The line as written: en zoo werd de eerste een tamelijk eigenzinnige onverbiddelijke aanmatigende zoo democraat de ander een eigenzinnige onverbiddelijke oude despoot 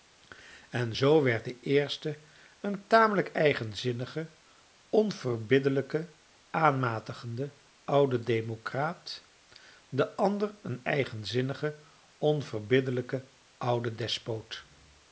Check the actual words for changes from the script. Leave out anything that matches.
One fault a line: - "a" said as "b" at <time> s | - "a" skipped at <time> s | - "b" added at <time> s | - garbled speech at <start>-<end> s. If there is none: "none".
- "zoo" said as "oude" at 7.8 s